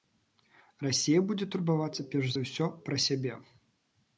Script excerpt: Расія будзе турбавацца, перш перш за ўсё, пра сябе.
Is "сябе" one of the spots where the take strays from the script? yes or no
no